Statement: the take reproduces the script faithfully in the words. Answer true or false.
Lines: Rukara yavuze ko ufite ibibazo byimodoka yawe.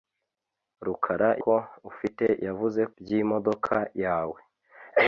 false